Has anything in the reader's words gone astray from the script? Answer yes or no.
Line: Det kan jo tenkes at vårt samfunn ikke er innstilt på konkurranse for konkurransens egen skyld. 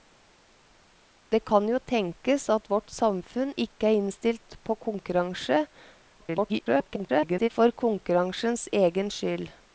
yes